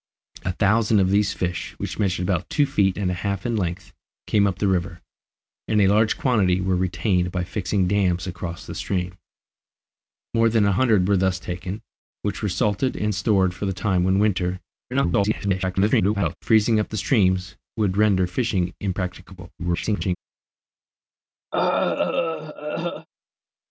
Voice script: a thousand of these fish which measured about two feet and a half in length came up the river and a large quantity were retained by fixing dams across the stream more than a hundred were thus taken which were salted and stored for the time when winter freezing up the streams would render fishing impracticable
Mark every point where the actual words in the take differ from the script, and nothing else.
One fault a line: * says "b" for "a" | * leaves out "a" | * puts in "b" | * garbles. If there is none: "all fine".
* garbles
* garbles